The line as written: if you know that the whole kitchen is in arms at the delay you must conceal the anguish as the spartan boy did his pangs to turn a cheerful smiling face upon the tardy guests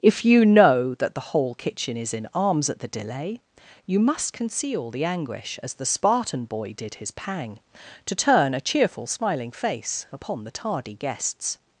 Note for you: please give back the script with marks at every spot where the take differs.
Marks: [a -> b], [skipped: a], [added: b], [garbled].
if you know that the whole kitchen is in arms at the delay you must conceal the anguish as the spartan boy did his [pangs -> pang] to turn a cheerful smiling face upon the tardy guests